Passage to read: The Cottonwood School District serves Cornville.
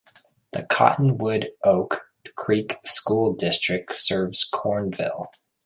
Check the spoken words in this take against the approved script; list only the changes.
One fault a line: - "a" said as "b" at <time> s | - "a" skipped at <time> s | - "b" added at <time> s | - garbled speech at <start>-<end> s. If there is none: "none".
- "Oak Creek" added at 1.7 s